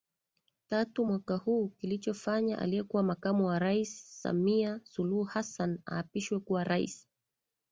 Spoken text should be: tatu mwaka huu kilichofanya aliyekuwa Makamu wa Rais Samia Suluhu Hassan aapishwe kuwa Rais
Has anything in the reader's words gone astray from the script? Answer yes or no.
no